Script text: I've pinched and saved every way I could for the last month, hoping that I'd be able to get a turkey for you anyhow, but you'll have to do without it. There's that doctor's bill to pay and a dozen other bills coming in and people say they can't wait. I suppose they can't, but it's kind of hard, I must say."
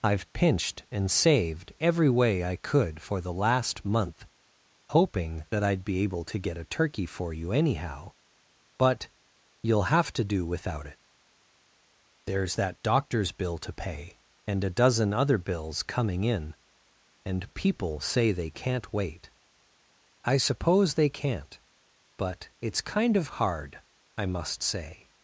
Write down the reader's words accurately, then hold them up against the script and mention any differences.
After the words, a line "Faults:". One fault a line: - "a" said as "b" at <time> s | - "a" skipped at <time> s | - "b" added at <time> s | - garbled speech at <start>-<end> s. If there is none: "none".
I've pinched and saved every way I could for the last month, hoping that I'd be able to get a turkey for you anyhow, but you'll have to do without it. There's that doctor's bill to pay and a dozen other bills coming in and people say they can't wait. I suppose they can't, but it's kind of hard, I must say."
Faults:
none